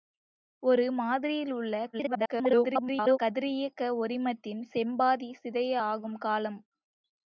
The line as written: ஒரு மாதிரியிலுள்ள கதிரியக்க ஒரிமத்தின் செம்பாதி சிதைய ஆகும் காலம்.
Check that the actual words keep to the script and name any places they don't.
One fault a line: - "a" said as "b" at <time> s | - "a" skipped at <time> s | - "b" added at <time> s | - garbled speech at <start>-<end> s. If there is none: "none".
- garbled speech at 1.9-3.2 s